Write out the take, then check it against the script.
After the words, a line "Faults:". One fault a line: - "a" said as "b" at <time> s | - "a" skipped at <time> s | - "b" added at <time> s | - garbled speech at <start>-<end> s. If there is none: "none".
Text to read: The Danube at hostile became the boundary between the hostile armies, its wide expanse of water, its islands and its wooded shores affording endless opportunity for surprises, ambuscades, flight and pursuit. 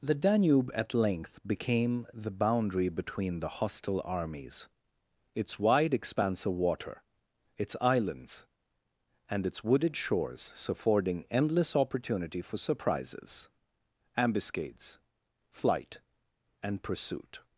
The Danube at length became the boundary between the hostile armies, its wide expanse of water, its islands and its wooded shores affording endless opportunity for surprises, ambuscades, flight and pursuit.
Faults:
- "hostile" said as "length" at 0.9 s